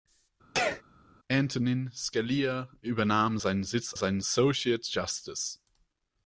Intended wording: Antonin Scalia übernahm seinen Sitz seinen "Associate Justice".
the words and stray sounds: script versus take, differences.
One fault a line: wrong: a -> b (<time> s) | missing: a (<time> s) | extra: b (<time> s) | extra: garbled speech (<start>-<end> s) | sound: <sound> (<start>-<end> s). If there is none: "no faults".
sound: sneeze (0.5-0.8 s)